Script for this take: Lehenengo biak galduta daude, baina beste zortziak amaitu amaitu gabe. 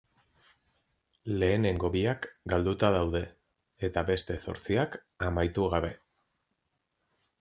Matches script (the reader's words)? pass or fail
fail